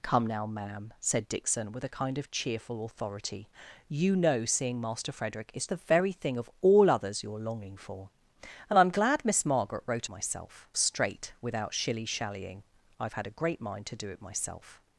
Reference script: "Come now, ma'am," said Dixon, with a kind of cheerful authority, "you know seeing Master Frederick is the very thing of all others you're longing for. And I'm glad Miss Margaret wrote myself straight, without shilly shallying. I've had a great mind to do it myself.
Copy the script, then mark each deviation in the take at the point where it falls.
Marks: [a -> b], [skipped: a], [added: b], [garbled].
"Come now, ma'am," said Dixon, with a kind of cheerful authority, "you know seeing Master Frederick is the very thing of all others you're longing for. And I'm glad Miss Margaret wrote myself straight, without shilly shallying. I've had a great mind to do it myself.